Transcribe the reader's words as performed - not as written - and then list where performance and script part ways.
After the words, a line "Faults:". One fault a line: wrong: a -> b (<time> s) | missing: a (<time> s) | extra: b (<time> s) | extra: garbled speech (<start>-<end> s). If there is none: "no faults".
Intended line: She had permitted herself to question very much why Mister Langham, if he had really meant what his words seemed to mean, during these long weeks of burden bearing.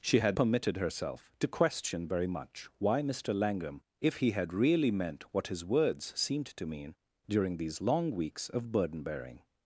She had permitted herself to question very much why Mister Langham, if he had really meant what his words seemed to mean, during these long weeks of burden bearing.
Faults:
no faults